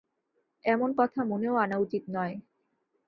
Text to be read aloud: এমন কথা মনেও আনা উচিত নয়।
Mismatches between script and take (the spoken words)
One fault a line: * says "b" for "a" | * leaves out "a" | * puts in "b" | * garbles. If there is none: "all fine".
all fine